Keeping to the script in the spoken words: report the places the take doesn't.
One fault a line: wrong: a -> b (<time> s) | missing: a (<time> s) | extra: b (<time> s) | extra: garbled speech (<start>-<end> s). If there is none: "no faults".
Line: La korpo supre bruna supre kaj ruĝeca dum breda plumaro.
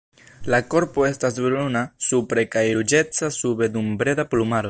wrong: supre -> estas (1.1 s)
extra: sube (3.4 s)